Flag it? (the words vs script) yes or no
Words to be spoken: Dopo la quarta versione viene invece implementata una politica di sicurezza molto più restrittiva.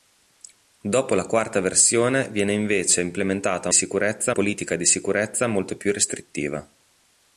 yes